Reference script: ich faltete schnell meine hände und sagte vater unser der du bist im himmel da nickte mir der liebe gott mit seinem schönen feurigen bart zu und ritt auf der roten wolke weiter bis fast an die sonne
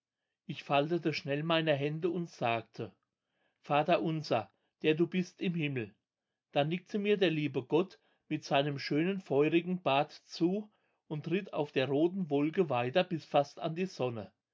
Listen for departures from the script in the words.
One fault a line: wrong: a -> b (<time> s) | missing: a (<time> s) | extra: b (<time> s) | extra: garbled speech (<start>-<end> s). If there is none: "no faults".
no faults